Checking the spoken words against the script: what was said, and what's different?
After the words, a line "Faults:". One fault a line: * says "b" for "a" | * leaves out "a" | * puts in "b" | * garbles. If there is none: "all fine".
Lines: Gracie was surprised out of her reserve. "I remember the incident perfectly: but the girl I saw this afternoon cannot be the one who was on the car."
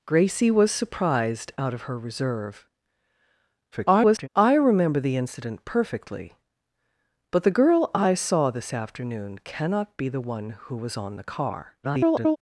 Gracie was surprised out of her reserve. [garbled] "I remember the incident perfectly: but the girl I saw this afternoon cannot be the one who was on the car." [garbled]
Faults:
* garbles
* garbles